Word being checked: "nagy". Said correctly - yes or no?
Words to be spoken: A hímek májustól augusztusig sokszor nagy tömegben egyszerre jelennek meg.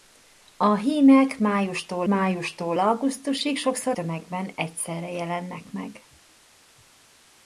no